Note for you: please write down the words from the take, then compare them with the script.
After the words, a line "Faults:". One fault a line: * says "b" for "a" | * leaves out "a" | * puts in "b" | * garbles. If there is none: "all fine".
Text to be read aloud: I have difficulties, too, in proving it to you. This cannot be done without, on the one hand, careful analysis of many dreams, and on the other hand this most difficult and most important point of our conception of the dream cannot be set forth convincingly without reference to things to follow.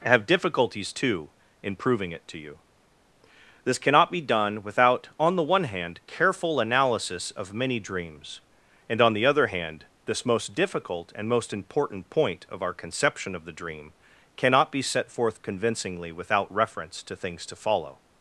have difficulties, too, in proving it to you. This cannot be done without, on the one hand, careful analysis of many dreams, and on the other hand this most difficult and most important point of our conception of the dream cannot be set forth convincingly without reference to things to follow.
Faults:
* leaves out "I"